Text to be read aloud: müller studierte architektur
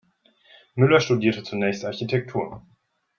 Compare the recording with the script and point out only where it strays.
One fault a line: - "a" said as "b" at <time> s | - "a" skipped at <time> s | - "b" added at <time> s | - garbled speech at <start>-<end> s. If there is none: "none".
- "zunächst" added at 1.4 s